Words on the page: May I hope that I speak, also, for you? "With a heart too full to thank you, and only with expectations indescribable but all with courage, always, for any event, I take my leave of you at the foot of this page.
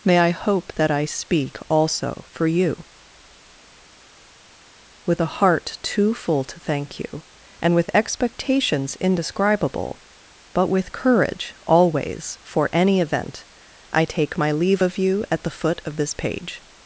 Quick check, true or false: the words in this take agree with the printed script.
false